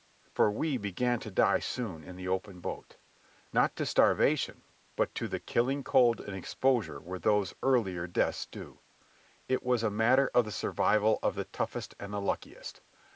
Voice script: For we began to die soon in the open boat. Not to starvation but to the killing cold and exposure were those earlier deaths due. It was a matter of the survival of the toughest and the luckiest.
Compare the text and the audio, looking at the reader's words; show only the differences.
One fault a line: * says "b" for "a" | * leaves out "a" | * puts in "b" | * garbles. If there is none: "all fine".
all fine